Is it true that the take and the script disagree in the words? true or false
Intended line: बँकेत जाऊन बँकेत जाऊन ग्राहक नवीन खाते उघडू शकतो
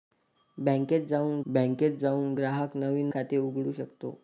false